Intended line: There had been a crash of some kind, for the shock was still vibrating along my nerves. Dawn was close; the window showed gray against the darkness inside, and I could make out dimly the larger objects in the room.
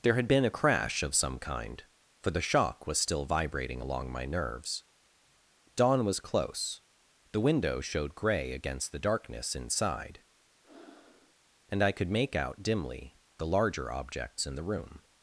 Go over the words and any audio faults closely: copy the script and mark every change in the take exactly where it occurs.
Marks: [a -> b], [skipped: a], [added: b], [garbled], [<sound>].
There had been a crash of some kind, for the shock was still vibrating along my nerves. Dawn was close; the window showed gray against the darkness inside, [breath] and I could make out dimly the larger objects in the room.